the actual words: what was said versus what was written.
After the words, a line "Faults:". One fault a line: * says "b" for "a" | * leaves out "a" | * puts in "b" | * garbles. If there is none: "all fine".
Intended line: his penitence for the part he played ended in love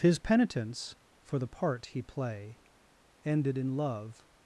his penitence for the part he play ended in love
Faults:
* says "play" for "played"